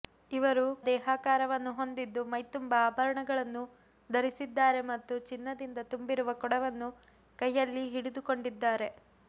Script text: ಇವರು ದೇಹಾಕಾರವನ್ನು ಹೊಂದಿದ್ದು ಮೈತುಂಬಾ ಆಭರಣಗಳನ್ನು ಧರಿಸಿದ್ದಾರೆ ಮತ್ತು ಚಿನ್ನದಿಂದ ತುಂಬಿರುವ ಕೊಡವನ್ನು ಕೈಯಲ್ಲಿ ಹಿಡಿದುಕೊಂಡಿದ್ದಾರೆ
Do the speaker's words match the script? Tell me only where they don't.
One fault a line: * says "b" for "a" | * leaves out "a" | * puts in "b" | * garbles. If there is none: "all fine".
all fine